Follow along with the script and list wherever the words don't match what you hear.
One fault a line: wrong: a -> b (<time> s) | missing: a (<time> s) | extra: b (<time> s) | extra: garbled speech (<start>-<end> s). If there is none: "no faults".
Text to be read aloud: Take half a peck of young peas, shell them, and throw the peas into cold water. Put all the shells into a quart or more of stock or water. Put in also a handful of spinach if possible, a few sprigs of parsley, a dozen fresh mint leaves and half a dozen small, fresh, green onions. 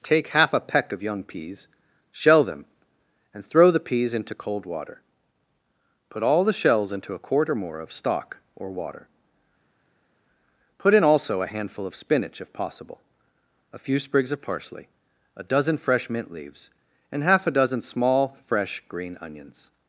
no faults